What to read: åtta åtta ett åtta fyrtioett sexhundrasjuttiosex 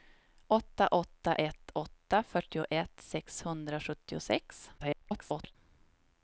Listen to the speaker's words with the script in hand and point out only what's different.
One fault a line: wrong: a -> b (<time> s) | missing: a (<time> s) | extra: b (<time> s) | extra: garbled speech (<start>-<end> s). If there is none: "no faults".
extra: garbled speech (4.8-5.6 s)